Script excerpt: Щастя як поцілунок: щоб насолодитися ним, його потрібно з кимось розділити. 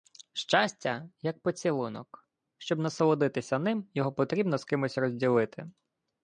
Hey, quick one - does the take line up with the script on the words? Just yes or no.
yes